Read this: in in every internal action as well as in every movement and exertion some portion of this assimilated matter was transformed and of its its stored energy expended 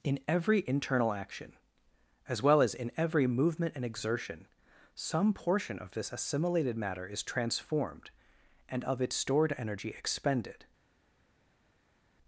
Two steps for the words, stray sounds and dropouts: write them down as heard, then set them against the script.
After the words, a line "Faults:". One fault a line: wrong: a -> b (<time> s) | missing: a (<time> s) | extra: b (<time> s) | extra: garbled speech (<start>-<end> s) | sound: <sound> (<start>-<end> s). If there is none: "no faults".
in every internal action as well as in every movement and exertion some portion of this assimilated matter is transformed and of its stored energy expended
Faults:
missing: in (0.2 s)
wrong: was -> is (7.0 s)
missing: its (9.2 s)